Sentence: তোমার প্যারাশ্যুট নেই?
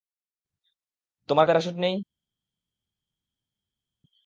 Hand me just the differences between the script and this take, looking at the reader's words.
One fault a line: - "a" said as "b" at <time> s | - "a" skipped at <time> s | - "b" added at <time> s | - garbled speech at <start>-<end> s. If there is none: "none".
none